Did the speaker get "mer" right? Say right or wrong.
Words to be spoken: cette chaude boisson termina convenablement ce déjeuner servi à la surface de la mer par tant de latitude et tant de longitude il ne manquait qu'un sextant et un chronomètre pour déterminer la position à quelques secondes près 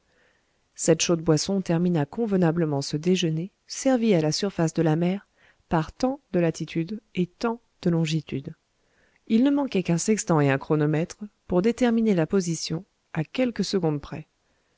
right